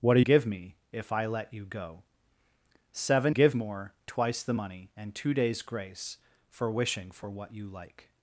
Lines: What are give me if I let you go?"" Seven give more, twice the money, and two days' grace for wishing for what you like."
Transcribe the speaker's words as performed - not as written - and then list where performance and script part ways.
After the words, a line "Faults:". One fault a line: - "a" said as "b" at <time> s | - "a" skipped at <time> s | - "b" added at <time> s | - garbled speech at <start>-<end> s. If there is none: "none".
What are give me if I let you go?"" Seven give more, twice the money, and two days' grace for wishing for what you like."
Faults:
none